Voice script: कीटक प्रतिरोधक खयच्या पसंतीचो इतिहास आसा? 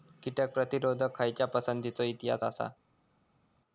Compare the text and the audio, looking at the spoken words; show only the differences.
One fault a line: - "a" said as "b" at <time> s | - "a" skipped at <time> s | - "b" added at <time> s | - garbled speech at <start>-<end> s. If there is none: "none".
none